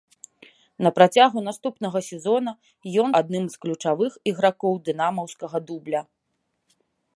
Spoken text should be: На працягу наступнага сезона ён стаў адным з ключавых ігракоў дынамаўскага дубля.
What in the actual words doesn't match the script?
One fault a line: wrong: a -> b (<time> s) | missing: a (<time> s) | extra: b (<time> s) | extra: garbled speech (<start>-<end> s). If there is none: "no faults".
missing: стаў (3.1 s)